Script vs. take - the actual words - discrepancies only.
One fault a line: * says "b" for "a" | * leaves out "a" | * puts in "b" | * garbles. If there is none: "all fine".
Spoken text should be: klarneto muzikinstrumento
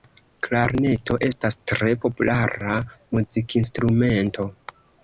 * puts in "estas tre populara"